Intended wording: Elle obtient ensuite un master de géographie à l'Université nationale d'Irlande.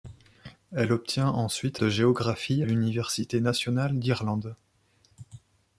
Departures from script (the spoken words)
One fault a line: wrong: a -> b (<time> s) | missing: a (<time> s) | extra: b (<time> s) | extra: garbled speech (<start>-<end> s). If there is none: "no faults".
missing: un master (1.8 s)
missing: à (2.6 s)